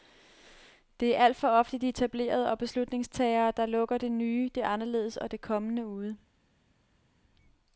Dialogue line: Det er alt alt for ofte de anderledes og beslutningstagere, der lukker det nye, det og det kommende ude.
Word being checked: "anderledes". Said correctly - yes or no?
no